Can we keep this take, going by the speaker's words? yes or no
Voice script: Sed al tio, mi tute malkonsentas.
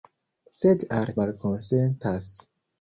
no